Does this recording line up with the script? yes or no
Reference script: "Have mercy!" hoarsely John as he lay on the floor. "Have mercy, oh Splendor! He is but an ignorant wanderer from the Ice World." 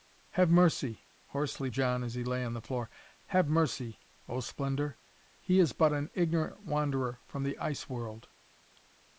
yes